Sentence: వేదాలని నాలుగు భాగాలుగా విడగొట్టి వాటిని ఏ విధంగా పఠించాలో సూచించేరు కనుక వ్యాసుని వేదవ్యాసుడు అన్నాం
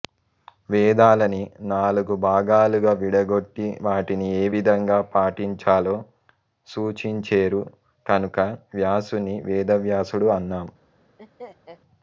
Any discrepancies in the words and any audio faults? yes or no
yes